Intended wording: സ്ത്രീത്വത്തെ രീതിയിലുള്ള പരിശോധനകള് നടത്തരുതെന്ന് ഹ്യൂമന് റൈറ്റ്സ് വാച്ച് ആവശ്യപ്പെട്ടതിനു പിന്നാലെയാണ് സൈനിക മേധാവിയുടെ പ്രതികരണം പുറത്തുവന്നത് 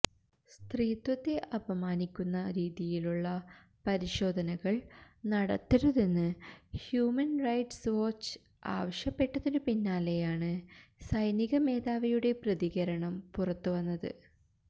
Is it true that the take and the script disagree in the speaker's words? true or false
true